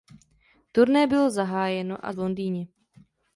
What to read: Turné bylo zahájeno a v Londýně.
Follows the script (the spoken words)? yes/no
yes